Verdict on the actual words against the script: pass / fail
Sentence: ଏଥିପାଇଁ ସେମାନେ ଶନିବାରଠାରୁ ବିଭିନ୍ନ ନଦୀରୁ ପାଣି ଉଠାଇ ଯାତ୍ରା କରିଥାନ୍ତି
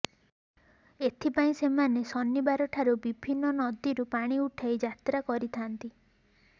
pass